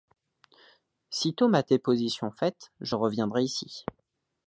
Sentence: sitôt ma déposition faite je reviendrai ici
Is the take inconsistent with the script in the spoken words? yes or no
no